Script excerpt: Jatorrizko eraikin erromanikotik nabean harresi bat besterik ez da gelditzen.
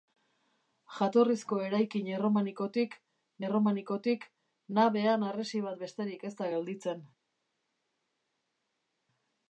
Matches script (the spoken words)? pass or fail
fail